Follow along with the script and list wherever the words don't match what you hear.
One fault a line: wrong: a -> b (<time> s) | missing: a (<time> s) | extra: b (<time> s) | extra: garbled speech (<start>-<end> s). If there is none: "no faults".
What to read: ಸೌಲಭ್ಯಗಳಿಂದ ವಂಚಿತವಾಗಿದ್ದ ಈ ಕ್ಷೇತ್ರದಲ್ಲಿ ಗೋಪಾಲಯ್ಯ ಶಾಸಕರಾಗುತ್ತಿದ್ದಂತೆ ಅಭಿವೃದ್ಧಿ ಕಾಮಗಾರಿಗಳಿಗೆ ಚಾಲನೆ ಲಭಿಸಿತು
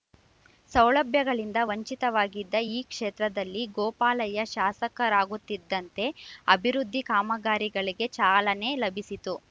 no faults